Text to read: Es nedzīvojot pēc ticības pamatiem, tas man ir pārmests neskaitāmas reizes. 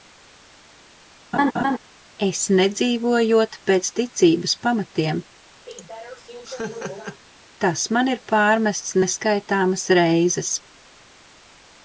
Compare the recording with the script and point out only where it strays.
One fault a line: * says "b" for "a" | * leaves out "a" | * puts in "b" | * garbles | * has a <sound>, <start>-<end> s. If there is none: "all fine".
* has a laugh, 1.3-1.8 s
* has a laugh, 5.7-7.2 s